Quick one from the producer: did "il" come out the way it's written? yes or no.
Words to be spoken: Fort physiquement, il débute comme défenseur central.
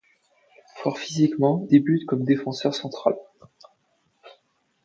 no